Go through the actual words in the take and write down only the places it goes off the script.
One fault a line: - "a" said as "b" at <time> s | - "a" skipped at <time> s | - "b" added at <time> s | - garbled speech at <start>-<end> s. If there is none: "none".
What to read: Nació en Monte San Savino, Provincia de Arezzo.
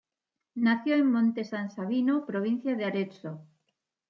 none